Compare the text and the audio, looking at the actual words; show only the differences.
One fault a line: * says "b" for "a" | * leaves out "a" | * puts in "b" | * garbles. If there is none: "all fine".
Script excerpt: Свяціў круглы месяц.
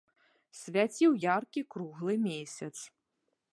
* puts in "яркі"